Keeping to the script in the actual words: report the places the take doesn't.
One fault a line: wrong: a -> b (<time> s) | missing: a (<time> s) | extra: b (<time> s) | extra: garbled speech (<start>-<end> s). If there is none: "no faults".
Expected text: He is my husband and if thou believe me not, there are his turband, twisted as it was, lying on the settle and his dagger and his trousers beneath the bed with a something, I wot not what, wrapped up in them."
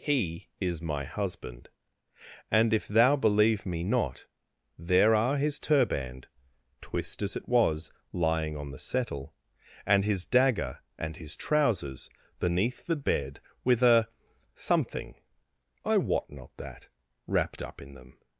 wrong: twisted -> twist (6.8 s)
wrong: what -> that (16.6 s)